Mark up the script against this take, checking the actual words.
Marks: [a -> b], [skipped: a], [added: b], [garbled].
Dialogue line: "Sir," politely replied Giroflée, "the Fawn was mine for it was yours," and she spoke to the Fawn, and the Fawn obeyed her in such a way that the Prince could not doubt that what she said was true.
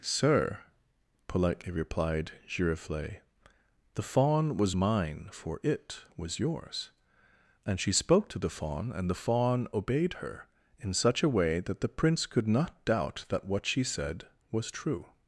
"Sir," politely replied Giroflée, "the Fawn was mine for it was yours," and she spoke to the Fawn, and the Fawn obeyed her in such a way that the Prince could not doubt that what she said was true.